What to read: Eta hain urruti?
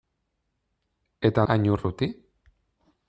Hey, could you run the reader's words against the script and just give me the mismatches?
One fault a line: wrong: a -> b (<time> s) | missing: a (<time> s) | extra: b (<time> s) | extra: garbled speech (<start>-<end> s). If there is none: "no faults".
no faults